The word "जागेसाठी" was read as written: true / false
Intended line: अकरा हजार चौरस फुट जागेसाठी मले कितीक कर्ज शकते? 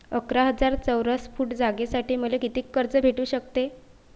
true